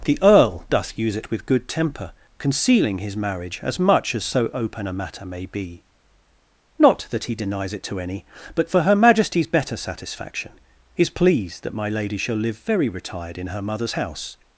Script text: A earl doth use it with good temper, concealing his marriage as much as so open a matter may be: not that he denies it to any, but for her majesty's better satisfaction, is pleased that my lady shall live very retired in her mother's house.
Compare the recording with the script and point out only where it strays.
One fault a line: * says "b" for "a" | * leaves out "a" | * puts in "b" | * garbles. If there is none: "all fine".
* says "The" for "A"